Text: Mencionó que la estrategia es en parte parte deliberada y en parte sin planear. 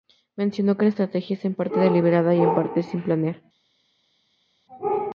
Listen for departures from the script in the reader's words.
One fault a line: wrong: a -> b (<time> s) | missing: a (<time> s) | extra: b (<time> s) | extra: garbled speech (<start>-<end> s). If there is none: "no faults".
missing: parte (1.8 s)